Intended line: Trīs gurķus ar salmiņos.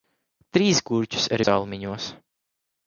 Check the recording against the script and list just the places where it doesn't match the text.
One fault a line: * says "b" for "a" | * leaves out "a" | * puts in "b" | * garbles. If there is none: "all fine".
all fine